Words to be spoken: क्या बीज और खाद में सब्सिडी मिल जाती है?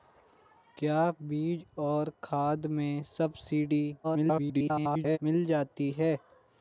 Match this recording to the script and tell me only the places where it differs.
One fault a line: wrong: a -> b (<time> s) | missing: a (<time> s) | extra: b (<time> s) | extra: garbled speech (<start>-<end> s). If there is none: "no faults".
extra: garbled speech (4.0-5.2 s)